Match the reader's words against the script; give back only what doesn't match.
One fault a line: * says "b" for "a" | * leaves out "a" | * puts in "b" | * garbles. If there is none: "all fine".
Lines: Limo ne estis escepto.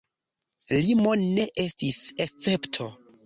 all fine